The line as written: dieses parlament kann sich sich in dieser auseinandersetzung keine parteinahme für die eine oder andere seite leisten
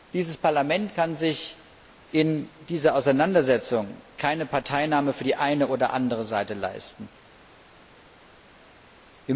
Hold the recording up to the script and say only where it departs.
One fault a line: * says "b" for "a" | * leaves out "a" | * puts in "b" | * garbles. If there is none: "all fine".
* leaves out "sich"